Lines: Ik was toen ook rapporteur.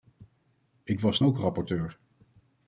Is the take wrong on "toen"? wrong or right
wrong